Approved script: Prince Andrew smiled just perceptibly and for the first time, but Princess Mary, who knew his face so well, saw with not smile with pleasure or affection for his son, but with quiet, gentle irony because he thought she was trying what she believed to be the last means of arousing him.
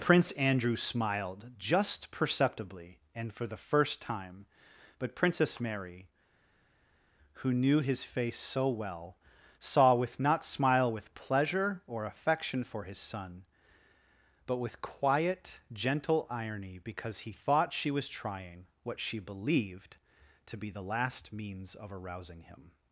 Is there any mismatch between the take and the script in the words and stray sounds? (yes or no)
no